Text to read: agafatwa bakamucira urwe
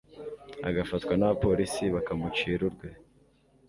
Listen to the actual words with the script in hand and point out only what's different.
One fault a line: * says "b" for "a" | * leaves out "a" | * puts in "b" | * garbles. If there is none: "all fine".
* puts in "n'abapolisi"